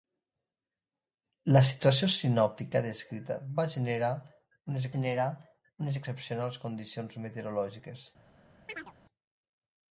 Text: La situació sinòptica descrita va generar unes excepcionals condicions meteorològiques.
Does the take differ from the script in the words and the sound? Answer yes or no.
yes